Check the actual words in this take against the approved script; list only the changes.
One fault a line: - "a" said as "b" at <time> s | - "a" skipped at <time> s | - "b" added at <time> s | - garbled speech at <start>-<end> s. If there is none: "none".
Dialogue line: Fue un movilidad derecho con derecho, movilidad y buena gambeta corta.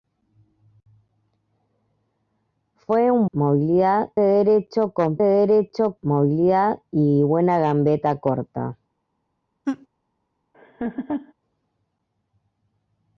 none